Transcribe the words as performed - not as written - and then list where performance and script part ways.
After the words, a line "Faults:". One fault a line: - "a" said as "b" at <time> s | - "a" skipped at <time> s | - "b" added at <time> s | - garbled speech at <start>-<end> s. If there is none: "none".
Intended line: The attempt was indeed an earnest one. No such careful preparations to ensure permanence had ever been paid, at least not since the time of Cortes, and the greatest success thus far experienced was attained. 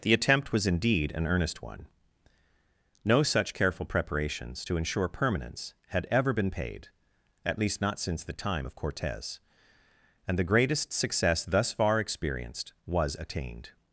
The attempt was indeed an earnest one. No such careful preparations to ensure permanence had ever been paid, at least not since the time of Cortes, and the greatest success thus far experienced was attained.
Faults:
none